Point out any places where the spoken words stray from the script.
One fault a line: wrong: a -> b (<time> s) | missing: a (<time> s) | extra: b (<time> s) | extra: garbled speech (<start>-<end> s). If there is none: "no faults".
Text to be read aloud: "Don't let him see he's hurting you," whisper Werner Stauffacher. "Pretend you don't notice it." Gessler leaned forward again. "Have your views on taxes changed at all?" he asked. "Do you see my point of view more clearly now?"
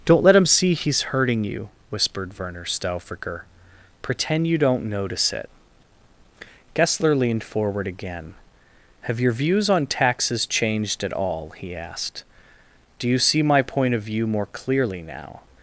wrong: whisper -> whispered (1.9 s)